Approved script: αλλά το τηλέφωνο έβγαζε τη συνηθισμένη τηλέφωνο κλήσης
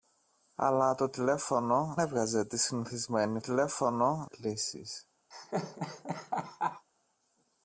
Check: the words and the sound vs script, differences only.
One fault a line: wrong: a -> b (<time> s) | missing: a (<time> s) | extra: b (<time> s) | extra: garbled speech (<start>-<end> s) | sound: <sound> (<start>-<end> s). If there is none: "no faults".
sound: laugh (5.3-6.9 s)